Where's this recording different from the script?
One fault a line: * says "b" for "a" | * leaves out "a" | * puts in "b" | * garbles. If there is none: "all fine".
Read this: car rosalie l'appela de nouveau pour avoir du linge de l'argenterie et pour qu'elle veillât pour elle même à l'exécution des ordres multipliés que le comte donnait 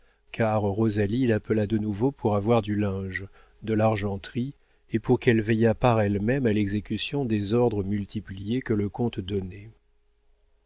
* says "par" for "pour"